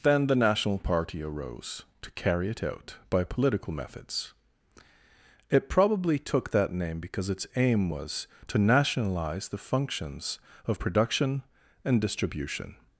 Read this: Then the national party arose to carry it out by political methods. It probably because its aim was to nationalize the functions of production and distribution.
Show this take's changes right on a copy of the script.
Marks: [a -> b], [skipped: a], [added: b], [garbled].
Then the national party arose to carry it out by political methods. It probably [added: took that name] because its aim was to nationalize the functions of production and distribution.